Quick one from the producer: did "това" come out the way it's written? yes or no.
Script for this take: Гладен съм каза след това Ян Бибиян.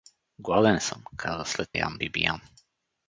no